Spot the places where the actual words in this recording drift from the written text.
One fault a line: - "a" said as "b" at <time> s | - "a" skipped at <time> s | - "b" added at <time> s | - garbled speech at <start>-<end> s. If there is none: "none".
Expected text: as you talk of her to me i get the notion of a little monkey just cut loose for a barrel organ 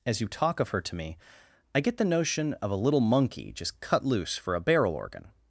none